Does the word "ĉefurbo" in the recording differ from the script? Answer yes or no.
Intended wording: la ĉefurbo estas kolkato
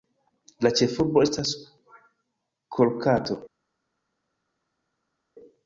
no